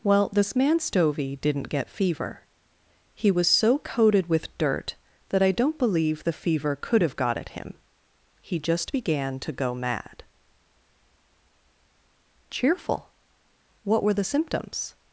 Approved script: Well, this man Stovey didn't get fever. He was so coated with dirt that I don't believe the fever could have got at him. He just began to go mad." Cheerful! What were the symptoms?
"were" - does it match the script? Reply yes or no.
yes